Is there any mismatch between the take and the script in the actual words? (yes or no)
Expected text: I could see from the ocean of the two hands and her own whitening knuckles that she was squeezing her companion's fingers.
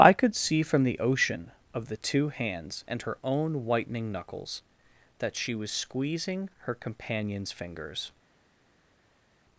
no